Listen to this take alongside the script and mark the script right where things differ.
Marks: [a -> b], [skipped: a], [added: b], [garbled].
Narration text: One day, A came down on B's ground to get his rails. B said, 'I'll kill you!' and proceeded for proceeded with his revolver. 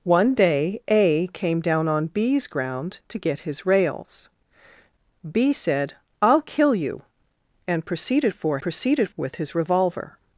One day, A came down on B's ground to get his rails. B said, 'I'll kill you!' and proceeded for proceeded with his revolver.